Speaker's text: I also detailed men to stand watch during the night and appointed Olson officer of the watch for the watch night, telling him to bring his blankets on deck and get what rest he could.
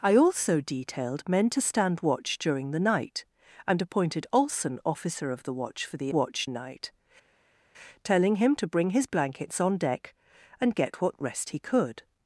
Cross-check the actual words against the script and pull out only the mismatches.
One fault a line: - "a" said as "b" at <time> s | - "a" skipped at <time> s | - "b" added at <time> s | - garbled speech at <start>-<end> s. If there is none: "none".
none